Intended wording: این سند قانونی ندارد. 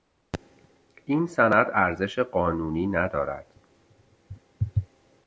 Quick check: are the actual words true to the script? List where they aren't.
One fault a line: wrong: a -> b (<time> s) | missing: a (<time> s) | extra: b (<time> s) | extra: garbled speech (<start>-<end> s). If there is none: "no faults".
extra: ارزش (1.7 s)